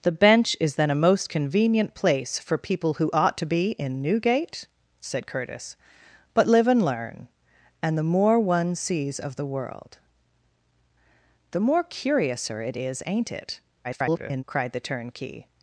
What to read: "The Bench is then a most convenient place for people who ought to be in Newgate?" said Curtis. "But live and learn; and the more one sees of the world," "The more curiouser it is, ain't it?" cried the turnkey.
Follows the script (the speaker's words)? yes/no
no